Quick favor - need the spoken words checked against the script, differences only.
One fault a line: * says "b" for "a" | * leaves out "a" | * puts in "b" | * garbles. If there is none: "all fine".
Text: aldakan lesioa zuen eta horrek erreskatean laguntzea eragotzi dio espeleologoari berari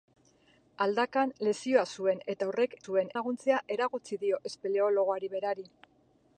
* says "zuen" for "erreskatean"